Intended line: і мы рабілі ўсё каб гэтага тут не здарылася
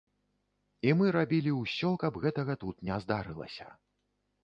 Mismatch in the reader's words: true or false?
false